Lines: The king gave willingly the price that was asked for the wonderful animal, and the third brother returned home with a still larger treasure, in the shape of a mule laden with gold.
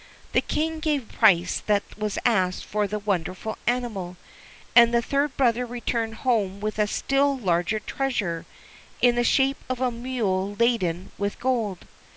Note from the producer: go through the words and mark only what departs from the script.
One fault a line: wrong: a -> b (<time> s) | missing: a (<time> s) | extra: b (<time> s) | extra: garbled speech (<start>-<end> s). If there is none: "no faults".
missing: willingly the (1.1 s)